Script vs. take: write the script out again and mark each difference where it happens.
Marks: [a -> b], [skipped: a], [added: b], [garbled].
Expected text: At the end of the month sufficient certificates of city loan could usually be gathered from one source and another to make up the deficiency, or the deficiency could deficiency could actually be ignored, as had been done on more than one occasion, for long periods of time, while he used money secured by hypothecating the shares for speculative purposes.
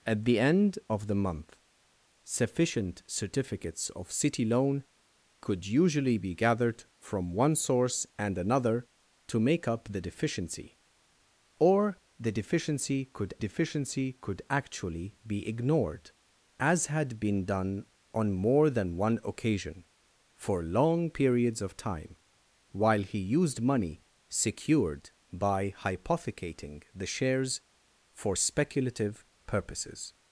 At the end of the month sufficient certificates of city loan could usually be gathered from one source and another to make up the deficiency, or the deficiency could deficiency could actually be ignored, as had been done on more than one occasion, for long periods of time, while he used money secured by hypothecating the shares for speculative purposes.